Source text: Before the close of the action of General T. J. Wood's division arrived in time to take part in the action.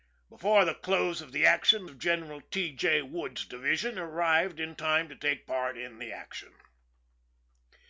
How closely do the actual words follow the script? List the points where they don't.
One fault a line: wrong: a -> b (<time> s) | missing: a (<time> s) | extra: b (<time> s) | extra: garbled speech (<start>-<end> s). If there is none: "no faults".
no faults